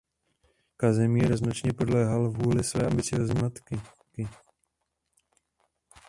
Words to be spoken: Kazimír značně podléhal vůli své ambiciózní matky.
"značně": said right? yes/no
yes